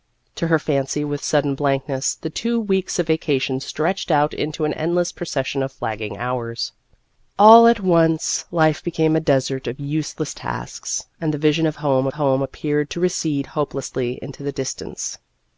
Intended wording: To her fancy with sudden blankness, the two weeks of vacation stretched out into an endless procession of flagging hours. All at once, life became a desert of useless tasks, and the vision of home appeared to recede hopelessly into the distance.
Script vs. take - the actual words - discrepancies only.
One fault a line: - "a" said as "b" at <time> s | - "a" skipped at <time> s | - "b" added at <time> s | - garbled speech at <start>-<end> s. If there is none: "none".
- "home" added at 12.1 s